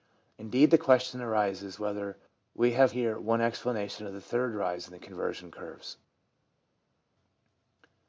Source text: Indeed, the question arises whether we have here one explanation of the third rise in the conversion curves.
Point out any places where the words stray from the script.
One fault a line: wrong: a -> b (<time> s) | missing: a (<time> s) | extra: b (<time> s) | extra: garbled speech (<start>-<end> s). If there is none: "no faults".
no faults